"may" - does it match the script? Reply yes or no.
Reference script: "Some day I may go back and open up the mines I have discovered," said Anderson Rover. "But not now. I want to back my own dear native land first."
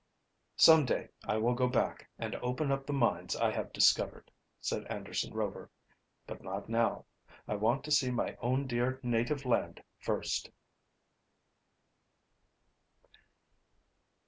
no